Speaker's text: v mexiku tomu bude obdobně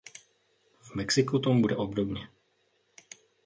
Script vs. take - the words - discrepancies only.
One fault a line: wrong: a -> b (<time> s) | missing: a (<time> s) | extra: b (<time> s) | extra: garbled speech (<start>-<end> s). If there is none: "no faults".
no faults